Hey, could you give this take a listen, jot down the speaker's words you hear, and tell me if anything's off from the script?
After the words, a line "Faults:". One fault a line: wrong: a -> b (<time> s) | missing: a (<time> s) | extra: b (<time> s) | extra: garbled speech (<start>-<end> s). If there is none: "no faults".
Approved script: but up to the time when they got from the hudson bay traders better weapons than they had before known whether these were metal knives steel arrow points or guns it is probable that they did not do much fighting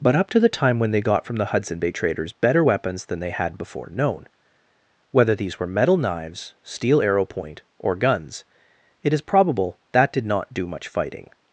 but up to the time when they got from the hudson bay traders better weapons than they had before known whether these were metal knives steel arrow point or guns it is probable that did not do much fighting
Faults:
wrong: points -> point (7.2 s)
missing: they (10.1 s)